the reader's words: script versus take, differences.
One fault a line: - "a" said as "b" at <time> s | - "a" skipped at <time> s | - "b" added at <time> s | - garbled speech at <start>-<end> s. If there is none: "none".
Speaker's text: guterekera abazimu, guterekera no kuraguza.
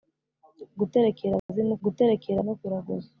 none